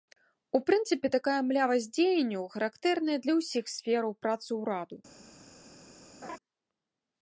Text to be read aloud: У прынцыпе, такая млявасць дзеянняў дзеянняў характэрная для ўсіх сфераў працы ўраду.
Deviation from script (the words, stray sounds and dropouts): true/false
true